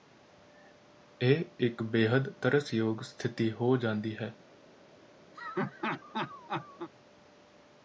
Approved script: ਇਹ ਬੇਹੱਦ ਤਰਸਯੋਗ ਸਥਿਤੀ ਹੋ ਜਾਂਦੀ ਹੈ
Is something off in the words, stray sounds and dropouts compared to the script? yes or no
yes